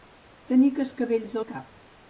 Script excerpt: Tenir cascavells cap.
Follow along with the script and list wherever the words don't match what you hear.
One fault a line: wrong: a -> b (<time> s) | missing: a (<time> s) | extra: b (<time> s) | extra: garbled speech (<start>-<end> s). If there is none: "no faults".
extra: al (1.4 s)